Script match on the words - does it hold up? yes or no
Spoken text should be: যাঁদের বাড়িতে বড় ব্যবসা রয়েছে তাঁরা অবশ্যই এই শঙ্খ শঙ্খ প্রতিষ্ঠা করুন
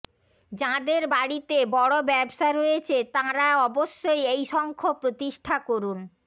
no